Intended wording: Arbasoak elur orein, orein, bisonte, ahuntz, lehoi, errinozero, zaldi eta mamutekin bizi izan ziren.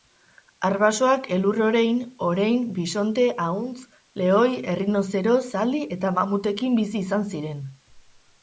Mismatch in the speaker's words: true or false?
false